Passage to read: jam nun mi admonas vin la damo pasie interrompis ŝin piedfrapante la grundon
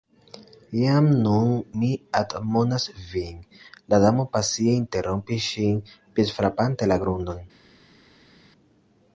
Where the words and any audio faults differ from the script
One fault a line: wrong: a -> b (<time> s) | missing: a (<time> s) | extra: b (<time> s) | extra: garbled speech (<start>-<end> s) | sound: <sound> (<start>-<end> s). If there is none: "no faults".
no faults